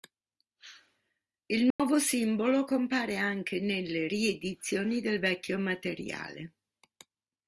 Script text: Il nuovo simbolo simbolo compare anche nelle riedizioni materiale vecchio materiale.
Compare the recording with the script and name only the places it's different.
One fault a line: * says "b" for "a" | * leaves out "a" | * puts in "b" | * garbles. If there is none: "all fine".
* leaves out "simbolo"
* says "del" for "materiale"